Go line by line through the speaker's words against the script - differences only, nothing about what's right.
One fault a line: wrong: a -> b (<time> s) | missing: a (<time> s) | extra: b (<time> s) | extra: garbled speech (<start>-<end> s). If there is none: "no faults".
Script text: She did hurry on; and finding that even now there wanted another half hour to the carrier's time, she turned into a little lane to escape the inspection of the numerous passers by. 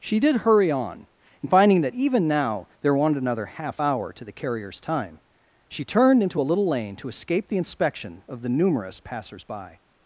no faults